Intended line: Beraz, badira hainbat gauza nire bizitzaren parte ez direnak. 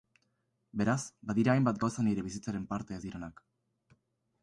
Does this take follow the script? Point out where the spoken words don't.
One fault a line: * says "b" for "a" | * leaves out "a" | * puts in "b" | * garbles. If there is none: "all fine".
all fine